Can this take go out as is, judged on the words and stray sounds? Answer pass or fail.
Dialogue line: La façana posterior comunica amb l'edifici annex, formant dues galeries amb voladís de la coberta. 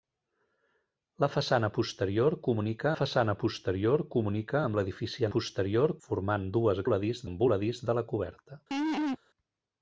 fail